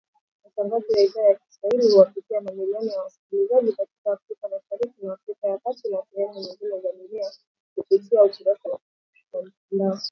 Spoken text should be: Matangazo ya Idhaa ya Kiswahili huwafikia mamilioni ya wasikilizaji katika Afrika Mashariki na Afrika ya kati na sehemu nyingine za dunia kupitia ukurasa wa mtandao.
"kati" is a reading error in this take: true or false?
false